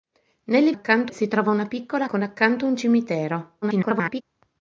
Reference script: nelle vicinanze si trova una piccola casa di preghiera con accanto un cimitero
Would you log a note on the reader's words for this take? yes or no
yes